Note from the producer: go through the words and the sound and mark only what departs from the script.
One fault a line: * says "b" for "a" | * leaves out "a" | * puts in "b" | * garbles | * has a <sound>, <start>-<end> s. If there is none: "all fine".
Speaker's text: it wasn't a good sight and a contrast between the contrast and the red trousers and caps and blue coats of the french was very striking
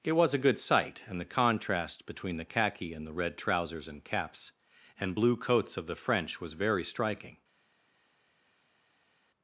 * says "was" for "wasn't"
* says "the" for "a"
* says "khaki" for "contrast"